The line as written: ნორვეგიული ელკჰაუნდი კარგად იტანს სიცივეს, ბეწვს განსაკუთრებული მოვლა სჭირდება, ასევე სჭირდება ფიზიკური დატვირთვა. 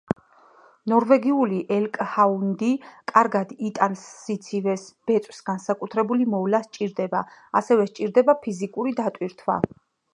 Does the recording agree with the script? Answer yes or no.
yes